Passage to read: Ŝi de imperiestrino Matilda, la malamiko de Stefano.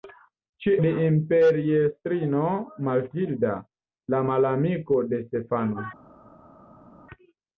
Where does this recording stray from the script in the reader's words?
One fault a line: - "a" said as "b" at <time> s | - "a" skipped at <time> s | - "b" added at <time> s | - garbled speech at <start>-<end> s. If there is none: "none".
none